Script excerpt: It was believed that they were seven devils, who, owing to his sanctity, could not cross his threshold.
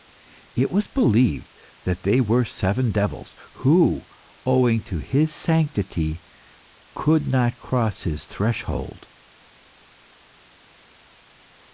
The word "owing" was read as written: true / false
true